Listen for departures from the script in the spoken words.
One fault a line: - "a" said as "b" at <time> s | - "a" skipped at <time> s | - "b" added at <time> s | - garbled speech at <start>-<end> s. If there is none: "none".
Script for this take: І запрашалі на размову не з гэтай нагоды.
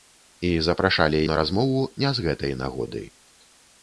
none